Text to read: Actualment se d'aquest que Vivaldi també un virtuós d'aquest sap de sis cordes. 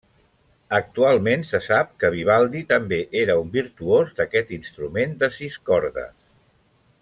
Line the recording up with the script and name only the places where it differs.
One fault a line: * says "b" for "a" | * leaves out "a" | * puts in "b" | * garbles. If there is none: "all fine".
* says "sap" for "d'aquest"
* puts in "era"
* says "instrument" for "sap"